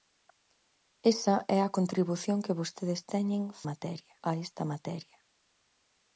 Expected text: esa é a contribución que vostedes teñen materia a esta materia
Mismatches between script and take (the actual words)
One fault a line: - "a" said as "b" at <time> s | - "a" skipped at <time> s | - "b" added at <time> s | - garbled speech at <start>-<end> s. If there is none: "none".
none